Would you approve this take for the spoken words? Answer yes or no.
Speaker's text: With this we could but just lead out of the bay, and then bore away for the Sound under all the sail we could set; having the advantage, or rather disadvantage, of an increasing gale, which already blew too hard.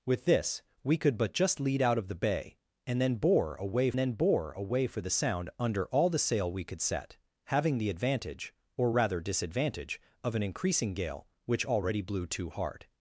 no